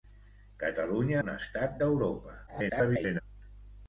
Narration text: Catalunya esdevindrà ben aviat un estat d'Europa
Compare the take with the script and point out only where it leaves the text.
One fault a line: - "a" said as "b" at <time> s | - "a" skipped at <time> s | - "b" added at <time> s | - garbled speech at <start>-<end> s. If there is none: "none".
- "esdevindrà ben aviat" skipped at 1.2 s
- garbled speech at 2.5-3.2 s